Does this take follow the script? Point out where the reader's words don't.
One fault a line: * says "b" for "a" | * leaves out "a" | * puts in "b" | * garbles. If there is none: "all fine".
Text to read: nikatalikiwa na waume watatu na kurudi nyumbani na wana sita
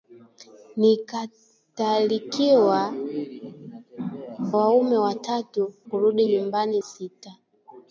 * leaves out "na"
* leaves out "na"
* leaves out "na wana"